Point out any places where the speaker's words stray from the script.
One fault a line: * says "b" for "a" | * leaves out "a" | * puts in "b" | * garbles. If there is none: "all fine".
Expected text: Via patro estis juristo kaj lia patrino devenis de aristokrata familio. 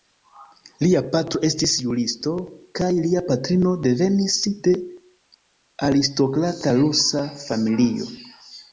* says "Lia" for "Via"
* puts in "rusa"